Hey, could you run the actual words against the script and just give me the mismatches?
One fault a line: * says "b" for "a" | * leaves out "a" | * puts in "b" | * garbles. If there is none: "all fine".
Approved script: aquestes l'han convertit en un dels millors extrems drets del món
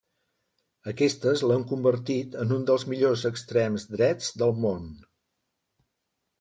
all fine